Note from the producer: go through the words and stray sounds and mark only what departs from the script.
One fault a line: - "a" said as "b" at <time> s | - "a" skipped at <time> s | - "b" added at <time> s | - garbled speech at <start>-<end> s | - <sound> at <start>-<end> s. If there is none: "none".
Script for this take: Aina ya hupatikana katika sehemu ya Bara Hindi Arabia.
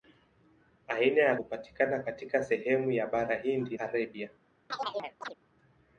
- chirp at 4.7-5.4 s